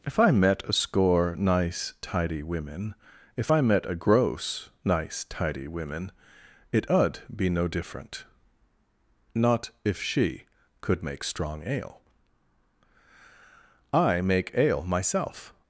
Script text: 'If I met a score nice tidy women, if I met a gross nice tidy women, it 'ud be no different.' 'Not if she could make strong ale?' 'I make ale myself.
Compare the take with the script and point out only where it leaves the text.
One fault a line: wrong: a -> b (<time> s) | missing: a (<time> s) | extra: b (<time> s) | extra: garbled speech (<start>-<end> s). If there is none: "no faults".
no faults